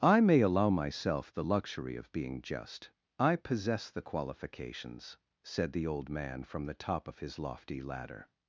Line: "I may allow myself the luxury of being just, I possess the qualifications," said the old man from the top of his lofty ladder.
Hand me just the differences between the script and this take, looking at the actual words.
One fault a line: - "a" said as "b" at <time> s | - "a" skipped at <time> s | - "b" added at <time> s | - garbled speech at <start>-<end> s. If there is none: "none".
none